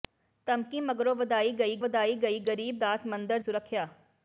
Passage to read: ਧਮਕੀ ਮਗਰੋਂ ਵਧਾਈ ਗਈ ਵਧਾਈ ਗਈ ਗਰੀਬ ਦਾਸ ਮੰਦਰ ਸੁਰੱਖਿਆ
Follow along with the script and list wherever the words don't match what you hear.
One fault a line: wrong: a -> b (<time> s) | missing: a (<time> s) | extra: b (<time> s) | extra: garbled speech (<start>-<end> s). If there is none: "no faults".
no faults